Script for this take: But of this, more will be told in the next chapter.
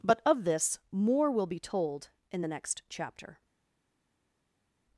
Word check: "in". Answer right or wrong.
right